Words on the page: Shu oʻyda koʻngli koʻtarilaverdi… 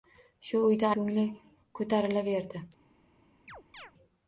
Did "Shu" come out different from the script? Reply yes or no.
no